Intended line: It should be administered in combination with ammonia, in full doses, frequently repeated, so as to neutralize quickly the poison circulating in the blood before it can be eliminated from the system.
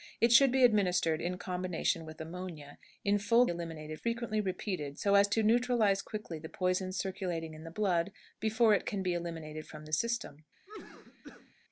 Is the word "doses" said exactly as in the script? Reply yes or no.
no